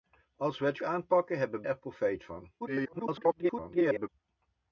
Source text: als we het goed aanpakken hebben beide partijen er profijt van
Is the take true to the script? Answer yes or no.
no